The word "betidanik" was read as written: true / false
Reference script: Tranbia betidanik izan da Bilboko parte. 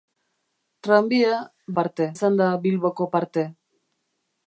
false